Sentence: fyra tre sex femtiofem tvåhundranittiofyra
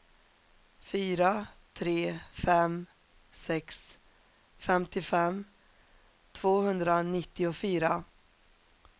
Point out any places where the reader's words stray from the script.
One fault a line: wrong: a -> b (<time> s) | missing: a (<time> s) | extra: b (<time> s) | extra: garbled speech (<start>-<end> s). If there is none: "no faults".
extra: fem (2.3 s)